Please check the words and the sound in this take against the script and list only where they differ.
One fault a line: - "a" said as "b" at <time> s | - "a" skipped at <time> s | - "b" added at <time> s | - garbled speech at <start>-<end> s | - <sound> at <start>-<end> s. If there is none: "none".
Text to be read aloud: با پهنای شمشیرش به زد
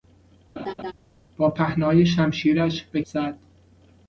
- laugh at 0.6-0.9 s